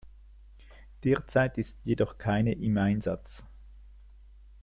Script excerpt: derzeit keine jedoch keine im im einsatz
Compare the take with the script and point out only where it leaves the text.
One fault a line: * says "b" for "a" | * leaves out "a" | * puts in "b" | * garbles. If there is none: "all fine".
* says "ist" for "keine"
* leaves out "im"